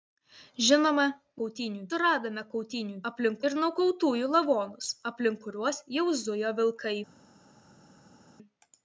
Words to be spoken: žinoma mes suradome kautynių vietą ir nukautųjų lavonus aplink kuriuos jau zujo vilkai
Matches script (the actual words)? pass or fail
fail